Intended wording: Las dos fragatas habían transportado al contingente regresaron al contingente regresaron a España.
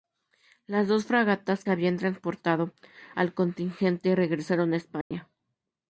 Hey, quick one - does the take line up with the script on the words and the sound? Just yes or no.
no